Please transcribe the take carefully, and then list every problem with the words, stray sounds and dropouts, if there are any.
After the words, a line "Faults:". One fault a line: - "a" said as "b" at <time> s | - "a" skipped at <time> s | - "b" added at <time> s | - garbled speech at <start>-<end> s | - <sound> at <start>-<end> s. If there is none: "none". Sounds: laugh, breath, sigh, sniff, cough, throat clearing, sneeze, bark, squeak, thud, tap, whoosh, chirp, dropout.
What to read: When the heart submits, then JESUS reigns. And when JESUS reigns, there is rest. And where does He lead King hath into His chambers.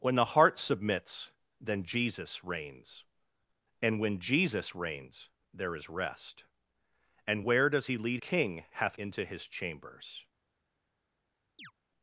When the heart submits, then JESUS reigns. And when JESUS reigns, there is rest. And where does He lead King hath into His chambers.
Faults:
- chirp at 11.6-11.7 s